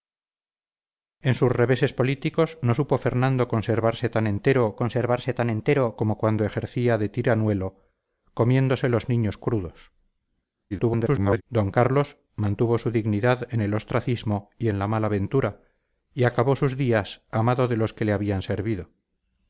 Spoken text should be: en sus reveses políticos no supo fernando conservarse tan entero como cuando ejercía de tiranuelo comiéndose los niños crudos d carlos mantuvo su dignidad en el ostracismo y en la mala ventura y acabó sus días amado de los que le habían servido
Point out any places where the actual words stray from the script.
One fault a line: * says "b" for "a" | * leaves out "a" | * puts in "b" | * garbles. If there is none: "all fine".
* puts in "conservarse tan entero"
* garbles